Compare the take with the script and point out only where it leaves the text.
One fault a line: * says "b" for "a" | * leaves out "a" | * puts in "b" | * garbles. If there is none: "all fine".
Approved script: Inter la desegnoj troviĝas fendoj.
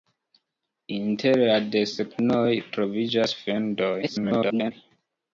* garbles